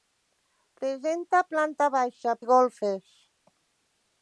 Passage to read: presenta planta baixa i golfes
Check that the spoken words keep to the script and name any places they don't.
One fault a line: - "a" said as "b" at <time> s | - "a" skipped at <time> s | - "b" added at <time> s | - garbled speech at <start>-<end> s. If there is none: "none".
none